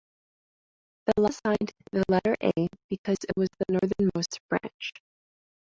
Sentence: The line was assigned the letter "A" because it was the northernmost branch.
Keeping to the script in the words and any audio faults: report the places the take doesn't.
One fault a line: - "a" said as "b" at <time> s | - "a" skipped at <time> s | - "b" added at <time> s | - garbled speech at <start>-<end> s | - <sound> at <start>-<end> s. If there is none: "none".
- "line was" skipped at 1.1 s